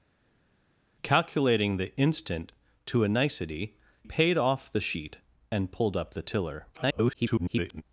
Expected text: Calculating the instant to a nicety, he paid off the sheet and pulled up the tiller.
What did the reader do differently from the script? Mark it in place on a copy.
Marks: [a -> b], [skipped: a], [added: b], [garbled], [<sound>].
Calculating the instant to a nicety, [skipped: he] paid off the sheet and pulled up the tiller. [garbled]